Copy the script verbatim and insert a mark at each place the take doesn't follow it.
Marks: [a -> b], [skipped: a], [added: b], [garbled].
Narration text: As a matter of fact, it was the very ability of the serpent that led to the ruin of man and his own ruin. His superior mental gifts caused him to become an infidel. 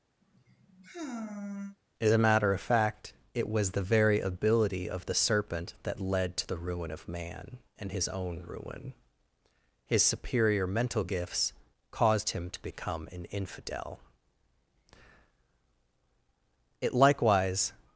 As a matter of fact, it was the very ability of the serpent that led to the ruin of man and his own ruin. His superior mental gifts caused him to become an infidel. [added: It likewise]